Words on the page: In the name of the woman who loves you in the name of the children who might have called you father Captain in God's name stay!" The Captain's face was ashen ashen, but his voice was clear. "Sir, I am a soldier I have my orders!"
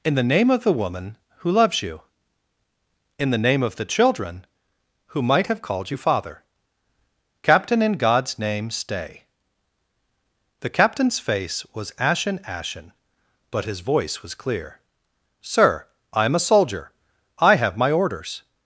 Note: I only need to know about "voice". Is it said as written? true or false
true